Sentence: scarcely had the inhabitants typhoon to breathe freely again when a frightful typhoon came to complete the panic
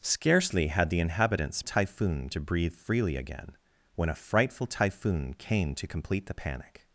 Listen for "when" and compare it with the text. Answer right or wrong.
right